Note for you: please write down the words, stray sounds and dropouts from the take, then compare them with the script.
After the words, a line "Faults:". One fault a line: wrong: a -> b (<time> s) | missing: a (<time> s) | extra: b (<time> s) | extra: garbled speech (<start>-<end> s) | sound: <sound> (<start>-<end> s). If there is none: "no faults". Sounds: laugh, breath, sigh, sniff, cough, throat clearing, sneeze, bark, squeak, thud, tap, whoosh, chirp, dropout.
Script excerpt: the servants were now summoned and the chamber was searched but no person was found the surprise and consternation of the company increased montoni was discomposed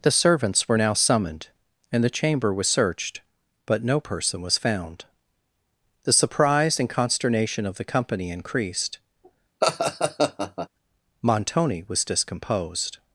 the servants were now summoned and the chamber was searched but no person was found the surprise and consternation of the company increased montoni was discomposed
Faults:
sound: laugh (9.6-10.7 s)